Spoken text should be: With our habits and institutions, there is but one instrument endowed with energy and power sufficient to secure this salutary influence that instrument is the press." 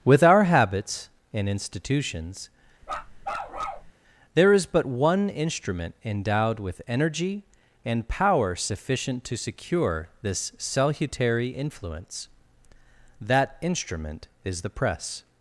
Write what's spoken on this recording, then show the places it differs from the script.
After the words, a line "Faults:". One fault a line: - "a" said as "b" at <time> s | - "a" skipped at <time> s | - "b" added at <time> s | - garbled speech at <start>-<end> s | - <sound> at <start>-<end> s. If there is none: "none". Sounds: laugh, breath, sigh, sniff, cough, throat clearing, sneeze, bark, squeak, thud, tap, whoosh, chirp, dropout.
With our habits and institutions, there is but one instrument endowed with energy and power sufficient to secure this salutary influence that instrument is the press."
Faults:
- bark at 2.8-3.9 s